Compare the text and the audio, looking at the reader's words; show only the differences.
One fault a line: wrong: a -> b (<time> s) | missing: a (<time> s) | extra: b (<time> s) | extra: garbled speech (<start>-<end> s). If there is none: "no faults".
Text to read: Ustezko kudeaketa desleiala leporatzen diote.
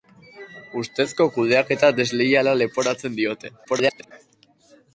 extra: garbled speech (3.6-4.1 s)